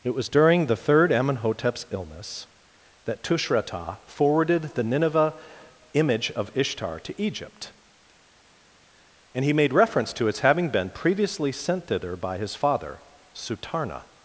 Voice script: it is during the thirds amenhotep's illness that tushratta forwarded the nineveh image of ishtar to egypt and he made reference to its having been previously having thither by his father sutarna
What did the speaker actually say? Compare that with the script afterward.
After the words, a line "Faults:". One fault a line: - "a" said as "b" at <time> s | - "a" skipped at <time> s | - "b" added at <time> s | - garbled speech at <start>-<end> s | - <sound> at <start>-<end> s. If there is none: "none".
it was during the third amenhotep's illness that tushratta forwarded the nineveh image of ishtar to egypt and he made reference to its having been previously sent thither by his father sutarna
Faults:
- "is" said as "was" at 0.1 s
- "thirds" said as "third" at 0.8 s
- "having" said as "sent" at 11.5 s